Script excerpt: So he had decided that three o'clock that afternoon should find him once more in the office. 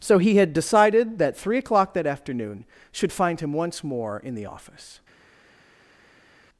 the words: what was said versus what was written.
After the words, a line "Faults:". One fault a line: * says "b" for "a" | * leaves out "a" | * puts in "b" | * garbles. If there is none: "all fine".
So he had decided that three o'clock that afternoon should find him once more in the office.
Faults:
all fine